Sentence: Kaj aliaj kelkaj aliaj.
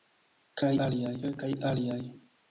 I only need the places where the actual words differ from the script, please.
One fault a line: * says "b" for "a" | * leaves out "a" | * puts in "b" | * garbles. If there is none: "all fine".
all fine